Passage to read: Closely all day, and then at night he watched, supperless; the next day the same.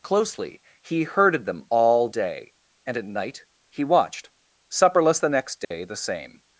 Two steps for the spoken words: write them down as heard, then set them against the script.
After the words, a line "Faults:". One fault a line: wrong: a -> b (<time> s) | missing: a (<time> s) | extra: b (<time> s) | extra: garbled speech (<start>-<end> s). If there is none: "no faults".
Closely he herded them all day, and at night he watched, supperless; the next day the same.
Faults:
extra: he herded them (0.8 s)
missing: then (2.9 s)